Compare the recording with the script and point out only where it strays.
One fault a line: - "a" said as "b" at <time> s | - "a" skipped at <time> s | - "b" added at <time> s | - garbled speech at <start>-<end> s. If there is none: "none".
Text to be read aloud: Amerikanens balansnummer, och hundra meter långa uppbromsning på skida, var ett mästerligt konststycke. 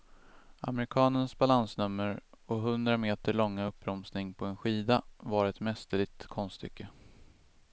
- "en" added at 4.5 s